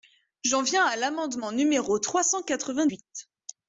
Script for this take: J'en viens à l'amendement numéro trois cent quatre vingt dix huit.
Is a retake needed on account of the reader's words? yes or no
yes